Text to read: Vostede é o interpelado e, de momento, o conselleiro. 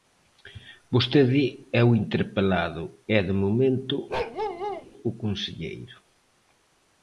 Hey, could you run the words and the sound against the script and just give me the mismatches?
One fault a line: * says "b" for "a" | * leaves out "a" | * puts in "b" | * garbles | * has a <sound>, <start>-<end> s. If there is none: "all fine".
* has a bark, 4.1-4.9 s